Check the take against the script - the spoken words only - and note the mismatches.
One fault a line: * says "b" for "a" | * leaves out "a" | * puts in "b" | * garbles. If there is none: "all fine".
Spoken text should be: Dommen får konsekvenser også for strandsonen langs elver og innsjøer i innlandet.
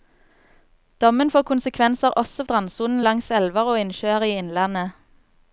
* leaves out "for"